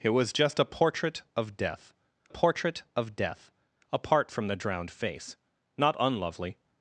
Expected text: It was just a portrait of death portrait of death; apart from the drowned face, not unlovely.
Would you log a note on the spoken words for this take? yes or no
no